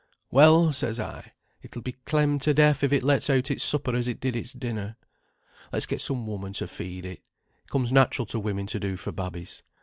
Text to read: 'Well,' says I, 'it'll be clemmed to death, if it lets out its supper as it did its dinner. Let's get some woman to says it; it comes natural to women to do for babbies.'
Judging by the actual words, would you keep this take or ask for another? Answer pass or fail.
fail